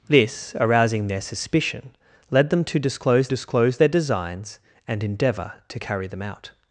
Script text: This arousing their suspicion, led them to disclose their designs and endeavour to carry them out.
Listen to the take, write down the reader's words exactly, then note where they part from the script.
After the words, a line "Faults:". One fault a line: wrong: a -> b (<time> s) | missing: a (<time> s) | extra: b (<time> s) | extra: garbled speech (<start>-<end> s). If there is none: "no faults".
This arousing their suspicion, led them to disclose disclose their designs and endeavour to carry them out.
Faults:
extra: disclose (3.3 s)